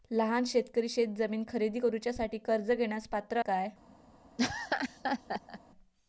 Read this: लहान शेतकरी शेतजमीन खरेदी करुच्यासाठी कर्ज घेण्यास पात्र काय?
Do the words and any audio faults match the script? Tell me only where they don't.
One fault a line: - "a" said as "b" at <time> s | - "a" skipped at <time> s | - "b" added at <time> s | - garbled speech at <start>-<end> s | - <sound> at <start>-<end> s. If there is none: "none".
- laugh at 4.4-5.6 s